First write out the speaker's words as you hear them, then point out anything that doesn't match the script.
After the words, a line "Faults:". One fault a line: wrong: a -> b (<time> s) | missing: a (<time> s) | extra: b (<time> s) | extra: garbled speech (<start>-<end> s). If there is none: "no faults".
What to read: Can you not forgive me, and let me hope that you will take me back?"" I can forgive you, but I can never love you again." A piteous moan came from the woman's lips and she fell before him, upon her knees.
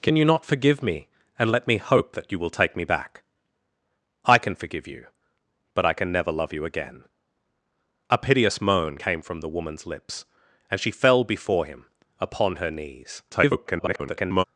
Can you not forgive me, and let me hope that you will take me back?"" I can forgive you, but I can never love you again." A piteous moan came from the woman's lips and she fell before him, upon her knees. [garbled]
Faults:
extra: garbled speech (13.3-14.4 s)